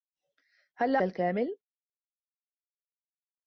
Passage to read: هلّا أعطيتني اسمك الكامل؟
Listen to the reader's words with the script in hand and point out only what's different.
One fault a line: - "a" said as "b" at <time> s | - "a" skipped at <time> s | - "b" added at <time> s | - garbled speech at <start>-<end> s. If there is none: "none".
- "أعطيتني اسمك" skipped at 1.0 s